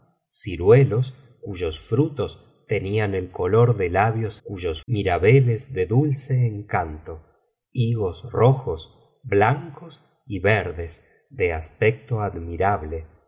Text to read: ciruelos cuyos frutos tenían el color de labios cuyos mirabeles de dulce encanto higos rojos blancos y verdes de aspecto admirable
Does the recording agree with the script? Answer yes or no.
yes